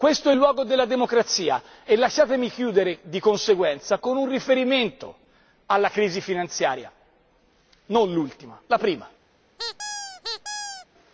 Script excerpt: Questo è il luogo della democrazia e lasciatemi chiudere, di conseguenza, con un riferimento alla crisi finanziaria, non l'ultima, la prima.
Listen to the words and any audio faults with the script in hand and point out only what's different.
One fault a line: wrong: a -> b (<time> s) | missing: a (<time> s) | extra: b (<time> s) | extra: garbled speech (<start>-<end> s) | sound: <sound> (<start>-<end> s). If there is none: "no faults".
sound: squeak (9.6-10.9 s)